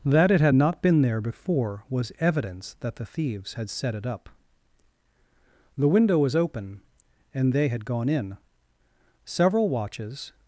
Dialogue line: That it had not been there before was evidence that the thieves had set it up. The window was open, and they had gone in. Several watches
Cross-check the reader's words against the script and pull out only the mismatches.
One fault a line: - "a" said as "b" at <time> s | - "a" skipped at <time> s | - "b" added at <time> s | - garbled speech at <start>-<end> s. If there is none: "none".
none